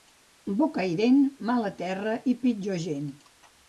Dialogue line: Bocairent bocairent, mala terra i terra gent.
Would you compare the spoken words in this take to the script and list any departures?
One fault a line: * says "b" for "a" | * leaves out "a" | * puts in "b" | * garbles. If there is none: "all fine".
* leaves out "bocairent"
* says "pitjor" for "terra"